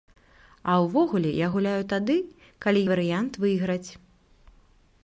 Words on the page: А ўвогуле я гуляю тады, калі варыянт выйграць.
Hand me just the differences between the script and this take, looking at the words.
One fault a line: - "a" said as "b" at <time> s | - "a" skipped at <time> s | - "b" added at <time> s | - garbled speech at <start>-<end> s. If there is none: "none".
none